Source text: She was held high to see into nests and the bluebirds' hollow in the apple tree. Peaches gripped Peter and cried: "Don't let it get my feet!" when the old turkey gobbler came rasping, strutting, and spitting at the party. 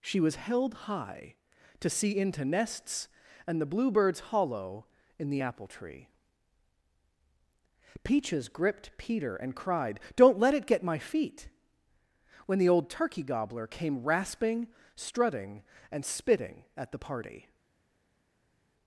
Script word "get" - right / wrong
right